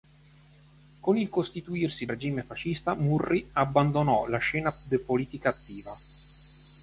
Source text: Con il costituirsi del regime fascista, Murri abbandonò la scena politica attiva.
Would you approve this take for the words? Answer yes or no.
no